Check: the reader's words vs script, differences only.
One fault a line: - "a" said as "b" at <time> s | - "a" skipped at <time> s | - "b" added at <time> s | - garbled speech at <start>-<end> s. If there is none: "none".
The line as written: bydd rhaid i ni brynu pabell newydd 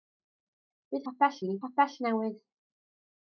- "rhaid" said as "pabell" at 1.0 s
- "brynu" skipped at 1.6 s